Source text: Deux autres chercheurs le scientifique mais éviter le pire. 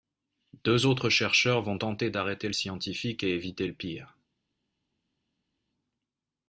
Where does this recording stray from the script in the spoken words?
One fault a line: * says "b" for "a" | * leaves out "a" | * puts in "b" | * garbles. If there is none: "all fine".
* puts in "vont tenter d'arrêter"
* says "et" for "mais"